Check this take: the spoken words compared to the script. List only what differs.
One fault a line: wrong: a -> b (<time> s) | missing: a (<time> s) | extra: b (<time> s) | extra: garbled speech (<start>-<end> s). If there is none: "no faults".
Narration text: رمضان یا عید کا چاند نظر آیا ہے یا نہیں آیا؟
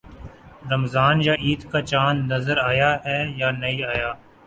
no faults